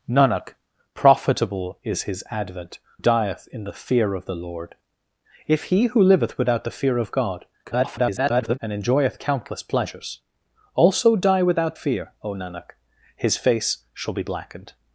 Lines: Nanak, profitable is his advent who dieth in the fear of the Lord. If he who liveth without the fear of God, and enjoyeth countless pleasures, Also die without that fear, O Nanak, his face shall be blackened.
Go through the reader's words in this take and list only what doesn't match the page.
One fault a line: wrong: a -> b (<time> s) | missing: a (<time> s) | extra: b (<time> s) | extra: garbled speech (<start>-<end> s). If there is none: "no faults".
missing: who (2.8 s)
extra: garbled speech (7.6-8.6 s)
missing: that (11.8 s)